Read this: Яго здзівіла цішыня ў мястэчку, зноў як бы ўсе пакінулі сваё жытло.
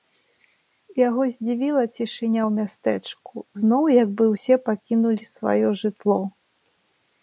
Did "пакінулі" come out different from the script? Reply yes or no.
no